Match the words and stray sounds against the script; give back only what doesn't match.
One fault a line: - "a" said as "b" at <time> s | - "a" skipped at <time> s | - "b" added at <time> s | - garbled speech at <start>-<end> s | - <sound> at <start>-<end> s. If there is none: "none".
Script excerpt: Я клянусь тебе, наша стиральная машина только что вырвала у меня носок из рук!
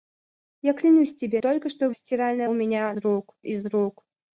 - "наша стиральная машина" skipped at 1.4 s
- "вырвала" said as "стиральная" at 1.9 s
- "носок" said as "рук" at 3.0 s